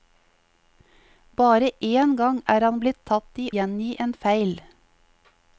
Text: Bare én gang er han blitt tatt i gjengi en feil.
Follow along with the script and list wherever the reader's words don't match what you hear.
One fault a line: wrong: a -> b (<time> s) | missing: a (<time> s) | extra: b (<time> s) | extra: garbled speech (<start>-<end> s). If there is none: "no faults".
no faults